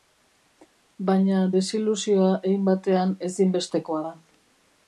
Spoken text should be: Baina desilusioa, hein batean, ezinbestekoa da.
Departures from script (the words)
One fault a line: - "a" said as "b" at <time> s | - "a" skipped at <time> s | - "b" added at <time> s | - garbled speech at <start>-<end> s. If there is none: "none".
none